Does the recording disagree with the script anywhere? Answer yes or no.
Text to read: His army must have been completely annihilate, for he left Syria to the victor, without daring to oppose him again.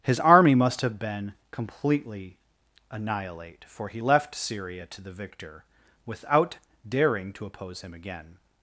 no